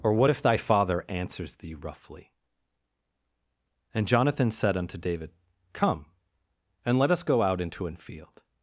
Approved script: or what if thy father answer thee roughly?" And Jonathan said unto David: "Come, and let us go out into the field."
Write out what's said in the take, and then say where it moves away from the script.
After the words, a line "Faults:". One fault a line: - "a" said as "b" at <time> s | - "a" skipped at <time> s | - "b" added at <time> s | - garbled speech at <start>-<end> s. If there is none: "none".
or what if thy father answers thee roughly?" And Jonathan said unto David: "Come, and let us go out into an field."
Faults:
- "answer" said as "answers" at 1.1 s
- "the" said as "an" at 7.9 s